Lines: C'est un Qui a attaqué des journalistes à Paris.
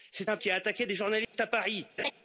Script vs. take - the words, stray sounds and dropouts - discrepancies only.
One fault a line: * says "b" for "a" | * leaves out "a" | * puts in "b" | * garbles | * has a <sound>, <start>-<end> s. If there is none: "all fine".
* has a dropout, 1.2-1.3 s
* has a laugh, 2.0-2.1 s